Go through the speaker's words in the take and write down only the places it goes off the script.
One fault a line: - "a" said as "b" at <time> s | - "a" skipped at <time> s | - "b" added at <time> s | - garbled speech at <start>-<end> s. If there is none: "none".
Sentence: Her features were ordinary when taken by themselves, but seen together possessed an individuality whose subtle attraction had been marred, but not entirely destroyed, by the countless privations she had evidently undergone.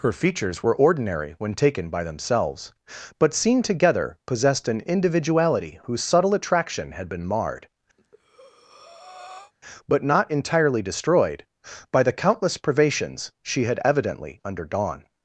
none